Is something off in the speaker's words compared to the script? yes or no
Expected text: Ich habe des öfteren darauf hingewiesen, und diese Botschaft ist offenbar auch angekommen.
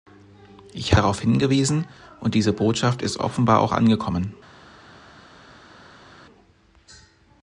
yes